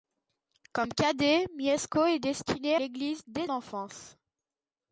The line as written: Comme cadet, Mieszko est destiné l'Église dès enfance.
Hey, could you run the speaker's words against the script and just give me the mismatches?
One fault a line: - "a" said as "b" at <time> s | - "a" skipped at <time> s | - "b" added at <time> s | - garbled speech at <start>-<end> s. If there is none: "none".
none